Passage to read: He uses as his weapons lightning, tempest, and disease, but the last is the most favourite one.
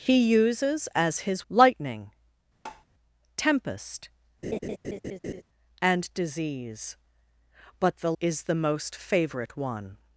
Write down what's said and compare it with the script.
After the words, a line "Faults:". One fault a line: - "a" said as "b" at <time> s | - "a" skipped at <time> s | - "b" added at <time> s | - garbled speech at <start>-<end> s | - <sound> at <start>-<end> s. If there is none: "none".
He uses as his lightning, tempest, and disease, but the is the most favourite one.
Faults:
- "weapons" skipped at 1.4 s
- tap at 2.7-2.9 s
- laugh at 4.4-5.4 s
- "last" skipped at 8.1 s